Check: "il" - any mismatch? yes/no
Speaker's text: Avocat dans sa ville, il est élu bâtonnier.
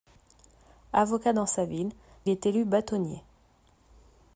yes